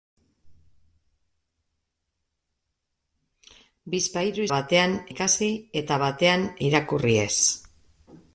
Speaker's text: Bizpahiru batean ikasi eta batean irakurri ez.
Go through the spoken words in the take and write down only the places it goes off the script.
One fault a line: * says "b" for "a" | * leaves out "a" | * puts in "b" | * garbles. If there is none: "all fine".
all fine